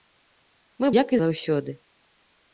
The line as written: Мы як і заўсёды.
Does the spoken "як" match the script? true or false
true